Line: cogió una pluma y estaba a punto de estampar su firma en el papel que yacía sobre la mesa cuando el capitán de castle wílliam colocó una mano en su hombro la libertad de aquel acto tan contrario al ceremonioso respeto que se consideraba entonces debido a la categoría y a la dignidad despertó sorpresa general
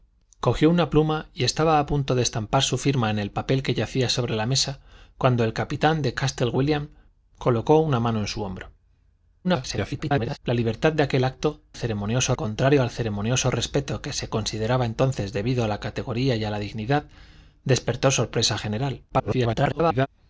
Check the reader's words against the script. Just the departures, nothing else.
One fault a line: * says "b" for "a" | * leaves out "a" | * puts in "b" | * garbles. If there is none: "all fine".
* garbles
* says "ceremonioso" for "tan"
* garbles